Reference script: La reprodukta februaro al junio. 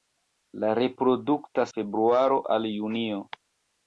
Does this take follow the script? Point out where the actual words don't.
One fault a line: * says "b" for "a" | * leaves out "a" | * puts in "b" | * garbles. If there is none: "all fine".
all fine